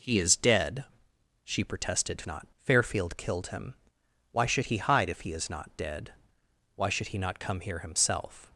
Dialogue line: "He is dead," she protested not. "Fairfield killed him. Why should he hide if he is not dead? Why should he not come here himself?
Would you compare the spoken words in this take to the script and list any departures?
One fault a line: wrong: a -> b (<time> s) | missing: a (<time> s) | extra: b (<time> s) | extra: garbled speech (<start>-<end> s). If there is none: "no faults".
no faults